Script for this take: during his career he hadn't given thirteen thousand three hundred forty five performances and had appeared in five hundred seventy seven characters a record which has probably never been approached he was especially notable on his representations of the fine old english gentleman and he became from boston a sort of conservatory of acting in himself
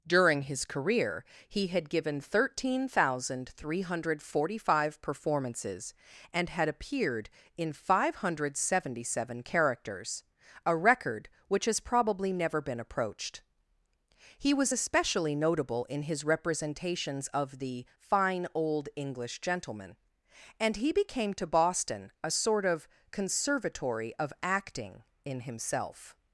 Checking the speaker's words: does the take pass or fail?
fail